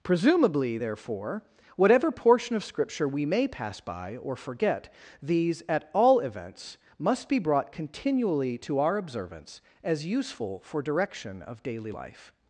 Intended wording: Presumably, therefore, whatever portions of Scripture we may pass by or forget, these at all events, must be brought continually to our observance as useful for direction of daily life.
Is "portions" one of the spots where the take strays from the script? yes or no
yes